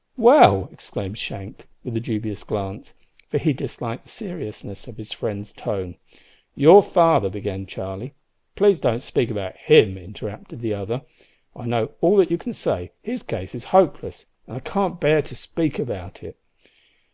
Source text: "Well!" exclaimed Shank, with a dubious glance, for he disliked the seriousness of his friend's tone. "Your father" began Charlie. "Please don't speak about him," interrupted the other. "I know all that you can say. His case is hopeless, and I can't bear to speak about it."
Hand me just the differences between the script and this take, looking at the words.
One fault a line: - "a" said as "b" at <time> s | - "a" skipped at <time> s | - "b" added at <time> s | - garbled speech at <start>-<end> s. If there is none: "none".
none